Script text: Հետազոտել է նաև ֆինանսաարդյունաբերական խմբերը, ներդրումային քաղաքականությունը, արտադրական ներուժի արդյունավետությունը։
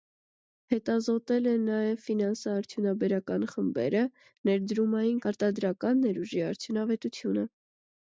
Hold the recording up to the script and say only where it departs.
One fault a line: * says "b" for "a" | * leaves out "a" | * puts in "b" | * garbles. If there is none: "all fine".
* leaves out "քաղաքականությունը"